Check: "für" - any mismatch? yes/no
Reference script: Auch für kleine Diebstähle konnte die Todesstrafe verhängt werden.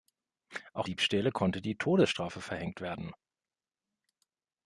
yes